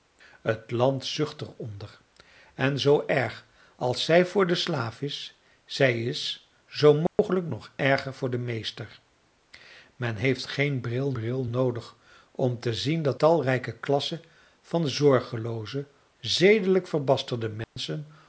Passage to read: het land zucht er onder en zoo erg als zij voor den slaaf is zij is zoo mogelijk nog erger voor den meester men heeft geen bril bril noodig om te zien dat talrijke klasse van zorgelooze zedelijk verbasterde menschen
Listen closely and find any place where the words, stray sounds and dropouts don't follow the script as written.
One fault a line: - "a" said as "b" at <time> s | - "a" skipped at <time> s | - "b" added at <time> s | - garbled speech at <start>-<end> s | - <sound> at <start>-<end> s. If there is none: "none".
- dropout at 7.1-7.2 s
- dropout at 17.6-17.8 s